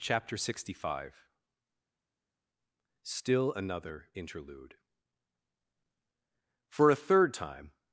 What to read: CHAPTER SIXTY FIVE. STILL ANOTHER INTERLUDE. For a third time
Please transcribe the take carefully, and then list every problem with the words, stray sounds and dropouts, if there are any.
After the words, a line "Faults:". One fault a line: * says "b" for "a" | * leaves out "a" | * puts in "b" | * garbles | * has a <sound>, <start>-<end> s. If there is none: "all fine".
CHAPTER SIXTY FIVE. STILL ANOTHER INTERLUDE. For a third time
Faults:
all fine